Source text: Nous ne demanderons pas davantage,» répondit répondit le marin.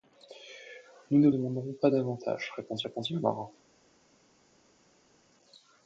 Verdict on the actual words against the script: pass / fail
pass